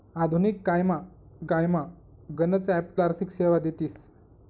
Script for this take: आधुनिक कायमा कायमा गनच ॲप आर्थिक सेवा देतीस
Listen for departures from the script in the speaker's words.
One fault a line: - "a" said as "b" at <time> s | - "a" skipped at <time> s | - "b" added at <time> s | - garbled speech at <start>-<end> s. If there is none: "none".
none